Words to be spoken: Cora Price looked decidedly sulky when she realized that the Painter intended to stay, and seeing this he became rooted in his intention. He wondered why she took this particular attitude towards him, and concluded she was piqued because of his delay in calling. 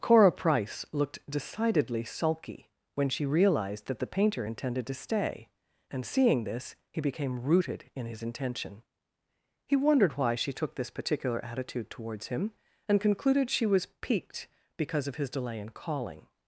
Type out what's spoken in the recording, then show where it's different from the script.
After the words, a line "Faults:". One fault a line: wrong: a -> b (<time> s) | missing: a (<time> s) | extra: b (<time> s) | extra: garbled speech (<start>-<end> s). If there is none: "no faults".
Cora Price looked decidedly sulky when she realized that the Painter intended to stay, and seeing this he became rooted in his intention. He wondered why she took this particular attitude towards him, and concluded she was piqued because of his delay in calling.
Faults:
no faults